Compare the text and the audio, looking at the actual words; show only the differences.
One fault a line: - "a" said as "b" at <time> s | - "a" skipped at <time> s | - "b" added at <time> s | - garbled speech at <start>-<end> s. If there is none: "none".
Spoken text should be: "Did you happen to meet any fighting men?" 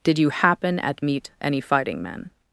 - "to" said as "at" at 0.8 s